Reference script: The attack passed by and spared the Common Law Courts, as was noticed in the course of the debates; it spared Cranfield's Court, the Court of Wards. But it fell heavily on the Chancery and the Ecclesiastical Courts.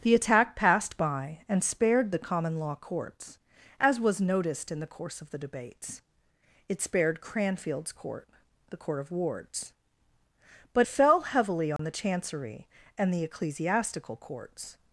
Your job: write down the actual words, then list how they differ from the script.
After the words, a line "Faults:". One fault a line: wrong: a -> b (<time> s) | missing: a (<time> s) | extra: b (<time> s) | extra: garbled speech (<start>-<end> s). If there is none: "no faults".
The attack passed by and spared the Common Law Courts, as was noticed in the course of the debates; it spared Cranfield's Court, the Court of Wards. But fell heavily on the Chancery and the Ecclesiastical Courts.
Faults:
missing: it (10.9 s)